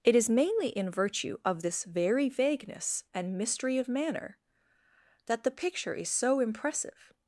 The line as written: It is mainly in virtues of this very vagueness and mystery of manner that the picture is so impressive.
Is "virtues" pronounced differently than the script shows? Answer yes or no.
yes